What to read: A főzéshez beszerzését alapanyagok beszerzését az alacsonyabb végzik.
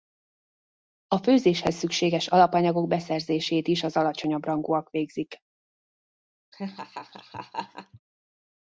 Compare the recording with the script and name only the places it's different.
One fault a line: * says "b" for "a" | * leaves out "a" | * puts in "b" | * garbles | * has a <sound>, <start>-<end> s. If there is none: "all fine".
* says "szükséges" for "beszerzését"
* puts in "is"
* puts in "rangúak"
* has a laugh, 6.5-8.0 s